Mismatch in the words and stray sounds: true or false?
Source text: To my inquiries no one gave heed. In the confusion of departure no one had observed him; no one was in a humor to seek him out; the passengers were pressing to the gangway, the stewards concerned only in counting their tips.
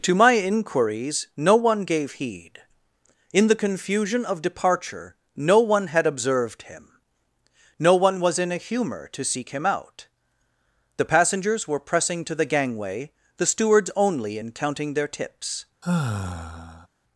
true